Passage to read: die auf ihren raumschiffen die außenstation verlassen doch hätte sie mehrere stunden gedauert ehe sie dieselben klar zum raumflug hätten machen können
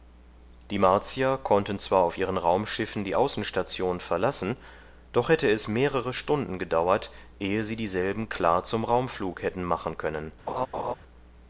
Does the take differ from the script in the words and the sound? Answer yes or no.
yes